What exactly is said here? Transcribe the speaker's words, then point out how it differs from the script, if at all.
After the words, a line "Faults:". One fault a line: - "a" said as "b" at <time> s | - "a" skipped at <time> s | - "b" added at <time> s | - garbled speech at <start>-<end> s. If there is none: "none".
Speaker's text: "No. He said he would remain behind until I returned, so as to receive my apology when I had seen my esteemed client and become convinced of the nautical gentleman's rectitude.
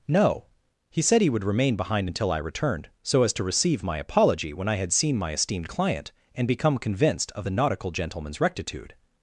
"No. He said he would remain behind until I returned, so as to receive my apology when I had seen my esteemed client and become convinced of the nautical gentleman's rectitude.
Faults:
none